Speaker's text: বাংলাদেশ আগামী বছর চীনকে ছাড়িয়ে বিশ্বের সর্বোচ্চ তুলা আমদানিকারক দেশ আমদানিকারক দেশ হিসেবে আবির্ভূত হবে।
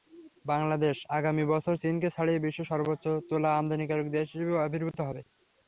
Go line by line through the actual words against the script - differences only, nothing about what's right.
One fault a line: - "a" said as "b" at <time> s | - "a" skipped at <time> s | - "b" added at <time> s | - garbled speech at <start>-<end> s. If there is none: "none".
- "আমদানিকারক দেশ" skipped at 4.3 s